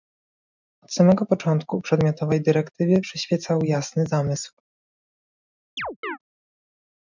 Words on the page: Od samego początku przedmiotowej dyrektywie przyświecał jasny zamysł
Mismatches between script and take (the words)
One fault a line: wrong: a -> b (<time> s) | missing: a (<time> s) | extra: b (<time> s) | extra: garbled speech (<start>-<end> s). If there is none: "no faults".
no faults